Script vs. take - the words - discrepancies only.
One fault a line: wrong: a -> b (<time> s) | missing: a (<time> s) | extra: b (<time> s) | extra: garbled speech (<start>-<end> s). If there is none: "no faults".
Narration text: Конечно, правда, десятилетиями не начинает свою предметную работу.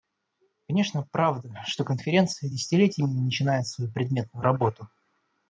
extra: что Конференция (1.7 s)